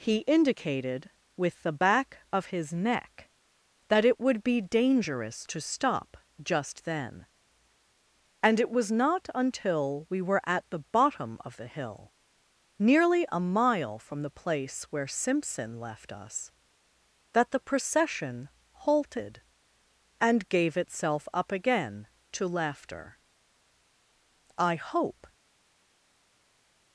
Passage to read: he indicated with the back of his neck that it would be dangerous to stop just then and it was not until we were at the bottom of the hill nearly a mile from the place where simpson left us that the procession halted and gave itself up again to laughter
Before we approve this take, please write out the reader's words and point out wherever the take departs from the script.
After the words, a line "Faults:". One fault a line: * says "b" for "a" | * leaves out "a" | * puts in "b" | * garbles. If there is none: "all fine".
he indicated with the back of his neck that it would be dangerous to stop just then and it was not until we were at the bottom of the hill nearly a mile from the place where simpson left us that the procession halted and gave itself up again to laughter i hope
Faults:
* puts in "i hope"